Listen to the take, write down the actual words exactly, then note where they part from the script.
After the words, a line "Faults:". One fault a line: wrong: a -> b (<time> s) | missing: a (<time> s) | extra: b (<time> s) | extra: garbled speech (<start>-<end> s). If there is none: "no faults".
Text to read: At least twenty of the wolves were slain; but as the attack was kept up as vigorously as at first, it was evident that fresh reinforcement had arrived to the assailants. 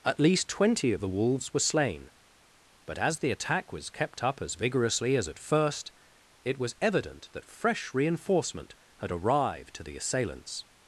At least twenty of the wolves were slain; but as the attack was kept up as vigorously as at first, it was evident that fresh reinforcement had arrived to the assailants.
Faults:
no faults